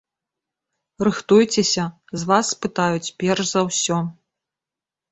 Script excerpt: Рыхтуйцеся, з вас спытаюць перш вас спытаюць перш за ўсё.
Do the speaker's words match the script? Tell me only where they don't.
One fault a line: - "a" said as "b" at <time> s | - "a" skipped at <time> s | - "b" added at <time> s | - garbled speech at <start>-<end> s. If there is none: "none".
- "вас спытаюць перш" skipped at 3.4 s